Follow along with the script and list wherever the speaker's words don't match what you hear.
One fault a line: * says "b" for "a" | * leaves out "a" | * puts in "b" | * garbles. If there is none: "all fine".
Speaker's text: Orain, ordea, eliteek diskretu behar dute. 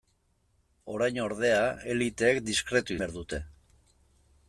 all fine